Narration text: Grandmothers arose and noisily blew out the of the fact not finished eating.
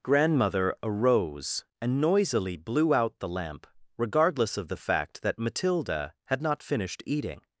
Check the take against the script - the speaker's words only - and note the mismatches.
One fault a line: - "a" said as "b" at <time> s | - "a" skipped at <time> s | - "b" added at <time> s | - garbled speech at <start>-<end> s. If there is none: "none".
- "Grandmothers" said as "Grandmother" at 0.0 s
- "lamp regardless" added at 3.3 s
- "that Matilda had" added at 5.2 s